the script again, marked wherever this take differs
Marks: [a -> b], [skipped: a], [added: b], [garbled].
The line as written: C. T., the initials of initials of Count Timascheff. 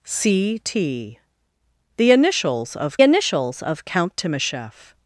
C. T., the initials of initials of Count Timascheff.